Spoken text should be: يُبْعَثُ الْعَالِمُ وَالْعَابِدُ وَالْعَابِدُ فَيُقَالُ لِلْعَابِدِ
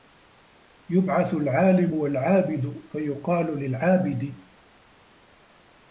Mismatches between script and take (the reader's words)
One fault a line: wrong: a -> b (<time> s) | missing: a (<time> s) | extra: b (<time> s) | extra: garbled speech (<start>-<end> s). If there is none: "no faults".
missing: وَالْعَابِدُ (2.8 s)